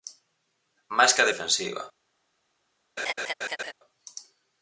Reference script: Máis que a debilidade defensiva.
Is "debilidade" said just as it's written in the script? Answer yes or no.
no